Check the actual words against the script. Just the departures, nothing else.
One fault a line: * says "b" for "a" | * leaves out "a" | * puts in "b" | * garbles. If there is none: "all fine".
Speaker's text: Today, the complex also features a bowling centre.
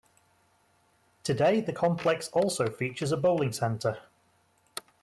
all fine